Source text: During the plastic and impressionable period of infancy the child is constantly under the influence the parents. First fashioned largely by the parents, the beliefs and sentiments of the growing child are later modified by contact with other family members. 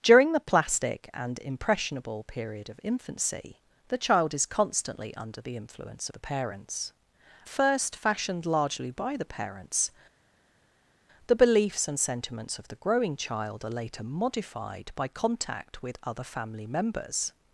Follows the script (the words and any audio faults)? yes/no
yes